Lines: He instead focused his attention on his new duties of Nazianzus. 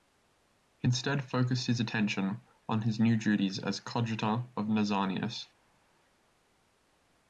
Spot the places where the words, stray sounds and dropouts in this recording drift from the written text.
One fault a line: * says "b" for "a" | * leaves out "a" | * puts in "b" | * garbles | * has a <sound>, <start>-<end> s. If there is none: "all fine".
* puts in "as coadjutor"